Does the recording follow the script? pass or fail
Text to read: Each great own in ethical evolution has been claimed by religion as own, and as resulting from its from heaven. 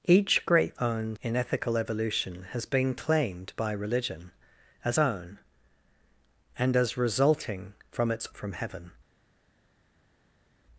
pass